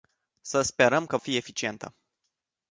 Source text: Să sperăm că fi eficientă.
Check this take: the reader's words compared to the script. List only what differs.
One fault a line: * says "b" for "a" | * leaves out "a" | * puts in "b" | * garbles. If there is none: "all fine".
all fine